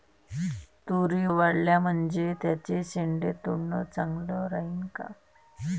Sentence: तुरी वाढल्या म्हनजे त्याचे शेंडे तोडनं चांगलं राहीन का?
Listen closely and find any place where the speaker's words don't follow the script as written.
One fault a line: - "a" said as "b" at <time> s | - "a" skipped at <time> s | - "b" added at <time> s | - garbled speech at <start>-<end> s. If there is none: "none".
none